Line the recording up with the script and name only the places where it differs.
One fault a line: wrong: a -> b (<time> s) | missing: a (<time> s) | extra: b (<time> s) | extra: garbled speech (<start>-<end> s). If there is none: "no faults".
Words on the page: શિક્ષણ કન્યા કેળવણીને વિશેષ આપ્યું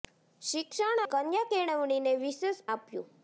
no faults